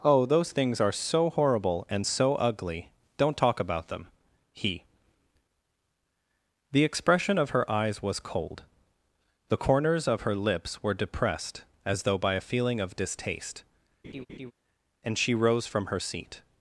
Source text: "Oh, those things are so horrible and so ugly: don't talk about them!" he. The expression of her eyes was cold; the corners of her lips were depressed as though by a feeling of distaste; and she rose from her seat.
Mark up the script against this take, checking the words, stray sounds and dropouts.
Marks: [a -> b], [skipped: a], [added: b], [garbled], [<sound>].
"Oh, those things are so horrible and so ugly: don't talk about them!" he. The expression of her eyes was cold; the corners of her lips were depressed as though by a feeling of distaste; [laugh] and she rose from her seat.